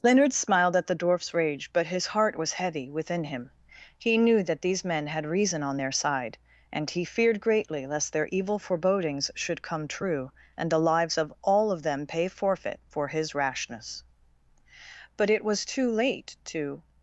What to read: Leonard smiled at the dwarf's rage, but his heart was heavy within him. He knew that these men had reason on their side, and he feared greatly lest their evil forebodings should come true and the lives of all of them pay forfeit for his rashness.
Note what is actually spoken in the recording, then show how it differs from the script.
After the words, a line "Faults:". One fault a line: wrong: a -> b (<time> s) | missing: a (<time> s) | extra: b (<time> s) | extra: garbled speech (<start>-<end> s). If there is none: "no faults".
Leonard smiled at the dwarf's rage, but his heart was heavy within him. He knew that these men had reason on their side, and he feared greatly lest their evil forebodings should come true and the lives of all of them pay forfeit for his rashness. But it was too late to
Faults:
extra: But it was too late to (15.2 s)